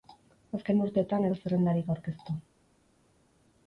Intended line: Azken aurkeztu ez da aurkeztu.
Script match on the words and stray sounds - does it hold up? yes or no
no